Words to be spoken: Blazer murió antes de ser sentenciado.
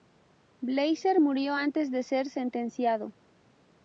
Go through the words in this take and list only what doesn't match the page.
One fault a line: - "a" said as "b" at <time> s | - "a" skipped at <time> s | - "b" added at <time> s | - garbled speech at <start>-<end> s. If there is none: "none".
none